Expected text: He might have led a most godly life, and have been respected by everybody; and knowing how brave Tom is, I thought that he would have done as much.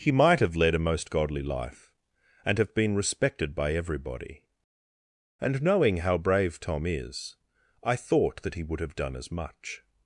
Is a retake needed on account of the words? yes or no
no